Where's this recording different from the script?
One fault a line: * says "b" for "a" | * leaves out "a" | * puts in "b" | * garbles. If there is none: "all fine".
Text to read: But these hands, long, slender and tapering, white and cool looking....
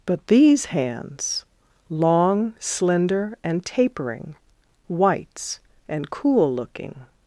* says "whites" for "white"